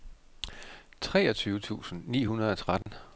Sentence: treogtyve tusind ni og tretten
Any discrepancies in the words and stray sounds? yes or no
yes